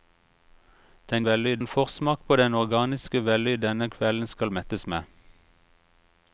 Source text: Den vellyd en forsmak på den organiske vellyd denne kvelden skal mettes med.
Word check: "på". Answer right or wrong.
right